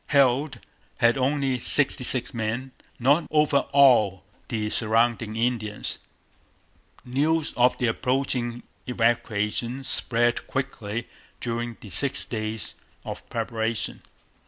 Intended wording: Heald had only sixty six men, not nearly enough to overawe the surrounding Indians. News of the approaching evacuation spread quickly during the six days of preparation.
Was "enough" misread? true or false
true